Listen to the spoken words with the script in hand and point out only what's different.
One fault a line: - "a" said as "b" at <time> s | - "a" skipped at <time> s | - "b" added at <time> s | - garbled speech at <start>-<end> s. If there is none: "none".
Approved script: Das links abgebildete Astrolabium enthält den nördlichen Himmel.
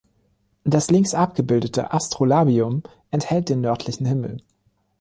none